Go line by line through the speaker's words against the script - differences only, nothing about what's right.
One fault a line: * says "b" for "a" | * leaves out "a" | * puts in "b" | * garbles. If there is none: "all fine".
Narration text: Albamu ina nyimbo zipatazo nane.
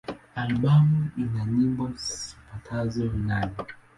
all fine